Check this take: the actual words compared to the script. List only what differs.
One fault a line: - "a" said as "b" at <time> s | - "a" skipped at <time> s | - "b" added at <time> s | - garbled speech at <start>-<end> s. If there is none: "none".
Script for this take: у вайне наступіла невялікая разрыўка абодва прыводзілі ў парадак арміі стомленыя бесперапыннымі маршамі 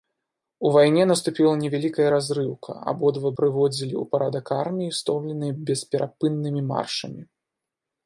none